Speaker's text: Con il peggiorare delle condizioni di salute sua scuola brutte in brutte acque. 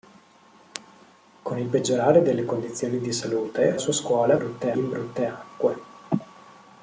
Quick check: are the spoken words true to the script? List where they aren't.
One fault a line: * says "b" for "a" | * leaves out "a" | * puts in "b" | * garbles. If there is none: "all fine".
all fine